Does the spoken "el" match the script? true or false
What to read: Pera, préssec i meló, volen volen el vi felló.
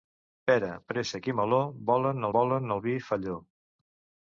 true